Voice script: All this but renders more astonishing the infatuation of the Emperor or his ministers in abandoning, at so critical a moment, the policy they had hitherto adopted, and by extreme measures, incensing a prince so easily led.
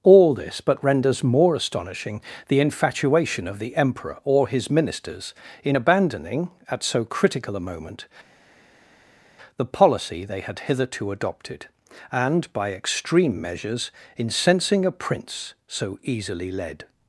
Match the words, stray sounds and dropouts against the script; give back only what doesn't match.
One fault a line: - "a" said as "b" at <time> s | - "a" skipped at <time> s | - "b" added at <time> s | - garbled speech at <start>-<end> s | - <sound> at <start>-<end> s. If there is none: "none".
none